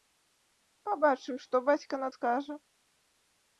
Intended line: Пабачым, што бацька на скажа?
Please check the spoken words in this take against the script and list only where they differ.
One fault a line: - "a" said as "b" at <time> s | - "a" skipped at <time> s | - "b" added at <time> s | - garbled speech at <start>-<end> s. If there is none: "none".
none